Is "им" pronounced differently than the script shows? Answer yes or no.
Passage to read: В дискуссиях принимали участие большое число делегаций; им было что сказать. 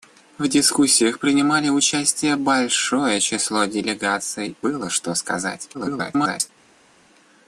yes